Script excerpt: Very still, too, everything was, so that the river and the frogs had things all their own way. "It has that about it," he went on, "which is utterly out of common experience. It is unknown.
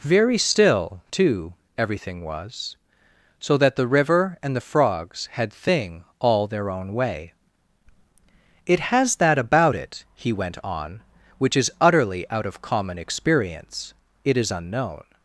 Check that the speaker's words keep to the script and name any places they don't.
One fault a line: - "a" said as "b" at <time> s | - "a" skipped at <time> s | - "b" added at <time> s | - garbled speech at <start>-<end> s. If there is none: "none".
- "things" said as "thing" at 5.5 s